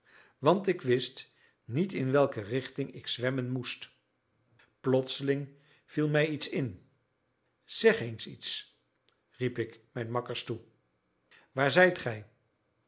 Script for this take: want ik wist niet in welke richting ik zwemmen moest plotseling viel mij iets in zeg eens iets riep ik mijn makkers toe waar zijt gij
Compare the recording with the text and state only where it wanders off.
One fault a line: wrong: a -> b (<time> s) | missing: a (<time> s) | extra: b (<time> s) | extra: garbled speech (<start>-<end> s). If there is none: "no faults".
no faults